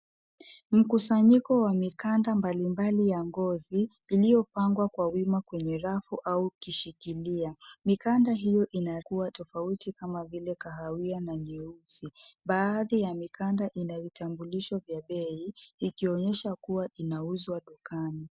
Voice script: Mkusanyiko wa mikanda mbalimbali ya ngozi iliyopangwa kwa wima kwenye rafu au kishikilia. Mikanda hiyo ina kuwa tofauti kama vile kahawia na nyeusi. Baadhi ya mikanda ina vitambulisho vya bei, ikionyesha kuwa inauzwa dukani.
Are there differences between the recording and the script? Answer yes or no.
no